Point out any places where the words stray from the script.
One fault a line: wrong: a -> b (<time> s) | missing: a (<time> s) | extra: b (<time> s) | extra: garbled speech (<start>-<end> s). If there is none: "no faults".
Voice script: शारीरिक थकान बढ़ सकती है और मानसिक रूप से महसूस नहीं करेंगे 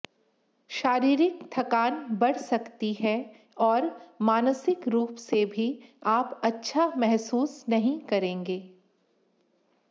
extra: भी आप अच्छा (5.5 s)